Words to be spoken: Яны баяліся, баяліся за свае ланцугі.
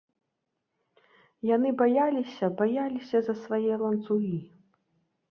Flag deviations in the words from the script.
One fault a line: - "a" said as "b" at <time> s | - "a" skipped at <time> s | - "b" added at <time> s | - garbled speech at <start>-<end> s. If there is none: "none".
none